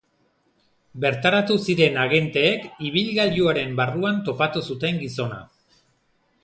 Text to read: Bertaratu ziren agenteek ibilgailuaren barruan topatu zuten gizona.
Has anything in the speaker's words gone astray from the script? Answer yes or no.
no